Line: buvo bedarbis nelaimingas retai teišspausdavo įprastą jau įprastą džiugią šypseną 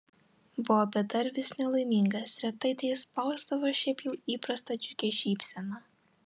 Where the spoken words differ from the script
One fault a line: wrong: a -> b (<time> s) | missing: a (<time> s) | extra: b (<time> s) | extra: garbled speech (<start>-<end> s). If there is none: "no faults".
wrong: įprastą -> šiaip (3.8 s)